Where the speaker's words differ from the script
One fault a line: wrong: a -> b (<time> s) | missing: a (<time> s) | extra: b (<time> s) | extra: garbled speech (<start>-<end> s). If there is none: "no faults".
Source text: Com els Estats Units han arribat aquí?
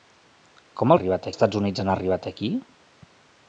wrong: els -> arribat (1.0 s)